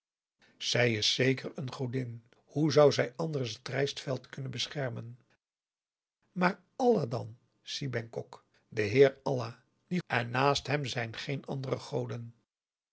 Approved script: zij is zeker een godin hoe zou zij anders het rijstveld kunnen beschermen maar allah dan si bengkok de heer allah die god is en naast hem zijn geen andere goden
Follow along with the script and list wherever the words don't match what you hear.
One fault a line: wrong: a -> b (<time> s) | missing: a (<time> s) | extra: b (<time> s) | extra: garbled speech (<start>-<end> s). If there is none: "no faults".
missing: god is (10.0 s)